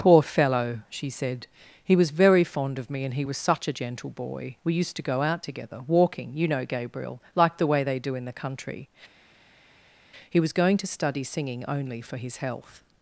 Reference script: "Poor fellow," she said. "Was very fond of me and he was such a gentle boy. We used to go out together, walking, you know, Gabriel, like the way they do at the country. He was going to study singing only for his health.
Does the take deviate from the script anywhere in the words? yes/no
yes